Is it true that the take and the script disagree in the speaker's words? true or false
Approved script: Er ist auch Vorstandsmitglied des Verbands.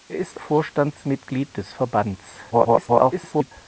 true